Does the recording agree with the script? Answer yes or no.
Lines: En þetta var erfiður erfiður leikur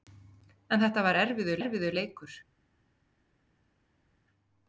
yes